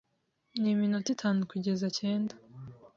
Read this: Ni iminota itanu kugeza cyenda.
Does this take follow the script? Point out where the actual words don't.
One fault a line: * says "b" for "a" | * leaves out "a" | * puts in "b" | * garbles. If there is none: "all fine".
all fine